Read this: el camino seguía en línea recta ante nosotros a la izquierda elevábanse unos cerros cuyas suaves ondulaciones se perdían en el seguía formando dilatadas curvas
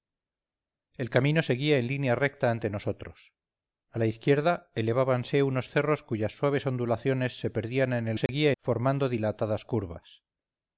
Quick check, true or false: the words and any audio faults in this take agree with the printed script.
false